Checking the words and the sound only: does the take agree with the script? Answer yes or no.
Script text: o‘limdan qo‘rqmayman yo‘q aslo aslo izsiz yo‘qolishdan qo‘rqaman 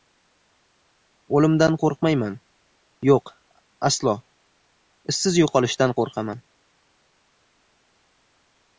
no